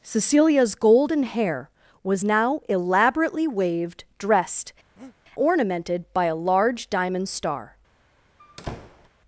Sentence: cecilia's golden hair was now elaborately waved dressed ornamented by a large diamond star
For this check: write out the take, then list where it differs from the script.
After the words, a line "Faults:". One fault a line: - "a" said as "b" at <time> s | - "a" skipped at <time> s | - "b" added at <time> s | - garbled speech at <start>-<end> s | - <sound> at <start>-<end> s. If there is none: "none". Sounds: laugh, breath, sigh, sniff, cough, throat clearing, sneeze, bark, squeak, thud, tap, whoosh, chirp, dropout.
cecilia's golden hair was now elaborately waved dressed ornamented by a large diamond star
Faults:
- breath at 5.0-5.2 s
- squeak at 8.4-9.1 s